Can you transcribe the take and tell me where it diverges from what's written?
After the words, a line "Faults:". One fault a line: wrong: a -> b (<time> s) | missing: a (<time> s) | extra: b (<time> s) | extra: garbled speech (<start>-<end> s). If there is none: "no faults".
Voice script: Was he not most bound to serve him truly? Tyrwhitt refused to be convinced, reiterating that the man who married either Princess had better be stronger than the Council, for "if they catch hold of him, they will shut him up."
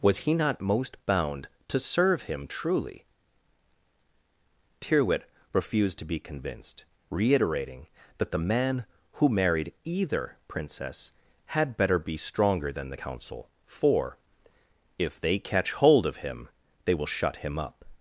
Was he not most bound to serve him truly? Tyrwhitt refused to be convinced, reiterating that the man who married either Princess had better be stronger than the Council, for "if they catch hold of him, they will shut him up."
Faults:
no faults